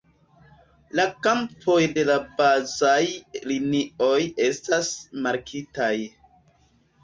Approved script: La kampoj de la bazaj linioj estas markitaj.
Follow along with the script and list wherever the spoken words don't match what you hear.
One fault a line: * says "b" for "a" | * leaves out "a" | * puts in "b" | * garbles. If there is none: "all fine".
all fine